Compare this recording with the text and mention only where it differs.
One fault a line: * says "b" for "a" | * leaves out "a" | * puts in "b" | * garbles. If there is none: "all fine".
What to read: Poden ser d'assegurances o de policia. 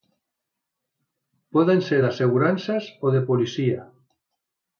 all fine